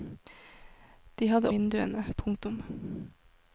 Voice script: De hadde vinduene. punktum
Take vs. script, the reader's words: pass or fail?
pass